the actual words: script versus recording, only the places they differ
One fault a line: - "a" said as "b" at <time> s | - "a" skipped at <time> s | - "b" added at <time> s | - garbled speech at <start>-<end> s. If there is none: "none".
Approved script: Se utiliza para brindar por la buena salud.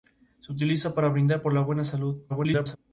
- garbled speech at 2.3-2.8 s